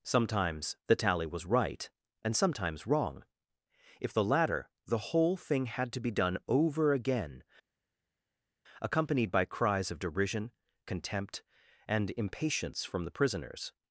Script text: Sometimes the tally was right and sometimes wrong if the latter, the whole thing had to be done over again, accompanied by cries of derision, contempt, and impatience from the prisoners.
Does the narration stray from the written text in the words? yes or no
no